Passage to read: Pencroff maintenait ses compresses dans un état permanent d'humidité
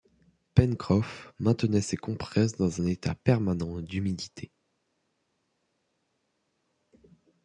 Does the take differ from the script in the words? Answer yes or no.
no